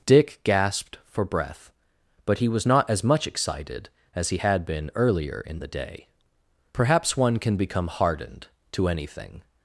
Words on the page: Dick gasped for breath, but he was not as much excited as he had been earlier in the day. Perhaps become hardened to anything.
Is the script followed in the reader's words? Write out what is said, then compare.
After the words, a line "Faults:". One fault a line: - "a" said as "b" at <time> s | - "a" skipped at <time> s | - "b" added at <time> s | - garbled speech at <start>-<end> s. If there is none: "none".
Dick gasped for breath, but he was not as much excited as he had been earlier in the day. Perhaps one can become hardened to anything.
Faults:
- "one can" added at 7.2 s